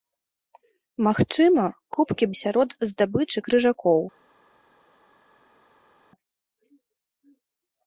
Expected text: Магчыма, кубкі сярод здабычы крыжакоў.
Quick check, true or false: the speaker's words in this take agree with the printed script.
true